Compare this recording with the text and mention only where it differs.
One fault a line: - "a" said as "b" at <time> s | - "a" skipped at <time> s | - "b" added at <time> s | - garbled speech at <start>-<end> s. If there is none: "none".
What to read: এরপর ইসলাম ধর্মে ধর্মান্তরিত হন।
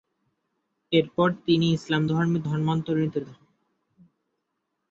- "তিনি" added at 1.4 s